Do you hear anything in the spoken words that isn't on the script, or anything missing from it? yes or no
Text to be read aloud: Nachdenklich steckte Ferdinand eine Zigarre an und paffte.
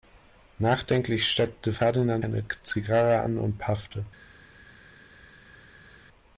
no